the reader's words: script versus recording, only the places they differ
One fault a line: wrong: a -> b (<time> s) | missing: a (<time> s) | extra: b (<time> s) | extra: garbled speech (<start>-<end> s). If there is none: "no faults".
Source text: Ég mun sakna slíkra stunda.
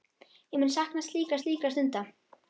extra: slíkra (1.4 s)